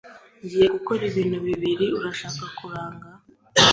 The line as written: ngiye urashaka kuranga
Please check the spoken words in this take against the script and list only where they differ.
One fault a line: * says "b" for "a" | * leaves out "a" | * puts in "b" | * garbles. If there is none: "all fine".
* puts in "gukora ibintu bibiri"